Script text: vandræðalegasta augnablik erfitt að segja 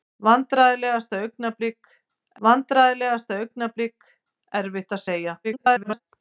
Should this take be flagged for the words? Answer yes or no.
yes